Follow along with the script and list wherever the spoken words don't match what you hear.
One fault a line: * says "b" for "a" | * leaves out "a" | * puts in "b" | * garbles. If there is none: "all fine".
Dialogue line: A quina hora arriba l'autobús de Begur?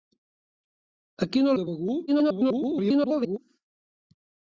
* leaves out "hora arriba l'autobús"
* garbles